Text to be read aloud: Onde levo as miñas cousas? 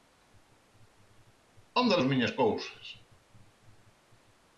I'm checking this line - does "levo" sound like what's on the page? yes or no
no